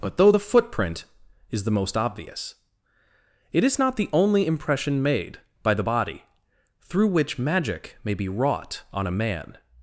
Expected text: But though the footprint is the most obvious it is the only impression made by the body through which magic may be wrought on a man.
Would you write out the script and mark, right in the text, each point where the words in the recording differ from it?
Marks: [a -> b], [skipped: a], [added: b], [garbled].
But though the footprint is the most obvious it is [added: not] the only impression made by the body through which magic may be wrought on a man.